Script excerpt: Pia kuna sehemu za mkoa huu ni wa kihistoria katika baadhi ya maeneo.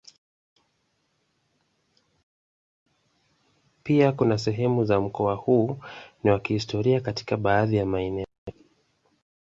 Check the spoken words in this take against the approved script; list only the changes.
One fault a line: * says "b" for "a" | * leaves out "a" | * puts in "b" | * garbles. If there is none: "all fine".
all fine